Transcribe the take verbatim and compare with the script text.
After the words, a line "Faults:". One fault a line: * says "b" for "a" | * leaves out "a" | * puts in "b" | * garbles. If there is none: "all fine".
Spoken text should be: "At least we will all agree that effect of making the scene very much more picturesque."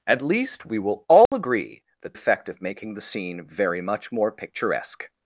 "At least we will all agree that effect of making the scene very much more picturesque."
Faults:
all fine